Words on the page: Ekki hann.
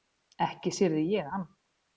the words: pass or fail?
fail